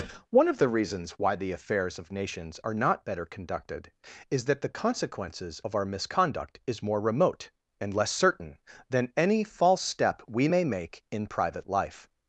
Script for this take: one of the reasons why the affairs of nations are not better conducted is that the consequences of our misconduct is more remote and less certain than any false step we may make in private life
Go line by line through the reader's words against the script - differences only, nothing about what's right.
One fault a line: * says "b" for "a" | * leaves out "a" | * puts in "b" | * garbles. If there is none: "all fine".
all fine